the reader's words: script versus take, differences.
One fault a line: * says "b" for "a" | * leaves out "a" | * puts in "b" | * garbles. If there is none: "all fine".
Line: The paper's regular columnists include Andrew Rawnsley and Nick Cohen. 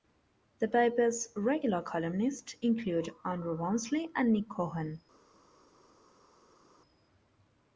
all fine